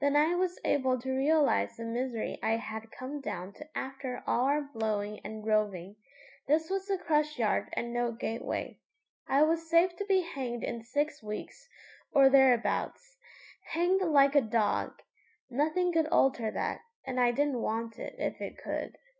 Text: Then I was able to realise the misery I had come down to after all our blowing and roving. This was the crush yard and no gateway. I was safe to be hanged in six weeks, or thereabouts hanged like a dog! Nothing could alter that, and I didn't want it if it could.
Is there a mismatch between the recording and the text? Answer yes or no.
no